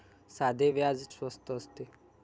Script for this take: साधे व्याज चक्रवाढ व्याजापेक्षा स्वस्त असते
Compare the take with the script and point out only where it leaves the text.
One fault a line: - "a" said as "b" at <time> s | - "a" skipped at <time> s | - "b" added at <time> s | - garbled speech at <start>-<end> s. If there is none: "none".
- "चक्रवाढ व्याजापेक्षा" skipped at 1.0 s